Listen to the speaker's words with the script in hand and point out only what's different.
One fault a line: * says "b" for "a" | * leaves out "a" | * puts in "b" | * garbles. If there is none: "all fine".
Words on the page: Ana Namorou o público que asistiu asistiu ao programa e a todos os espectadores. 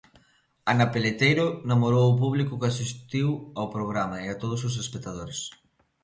* puts in "Peleteiro"
* leaves out "asistiu"